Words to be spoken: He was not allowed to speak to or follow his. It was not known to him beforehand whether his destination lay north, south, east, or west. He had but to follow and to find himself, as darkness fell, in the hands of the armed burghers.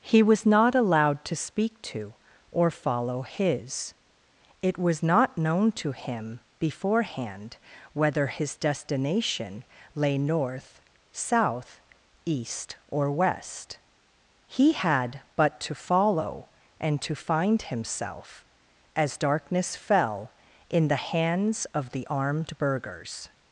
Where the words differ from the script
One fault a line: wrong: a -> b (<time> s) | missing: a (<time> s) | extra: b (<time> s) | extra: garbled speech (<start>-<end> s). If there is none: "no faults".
no faults